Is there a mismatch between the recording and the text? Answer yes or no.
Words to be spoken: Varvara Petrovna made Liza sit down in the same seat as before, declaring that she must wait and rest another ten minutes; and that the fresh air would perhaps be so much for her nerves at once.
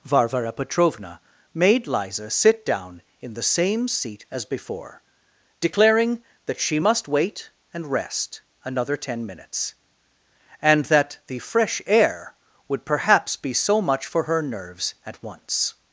no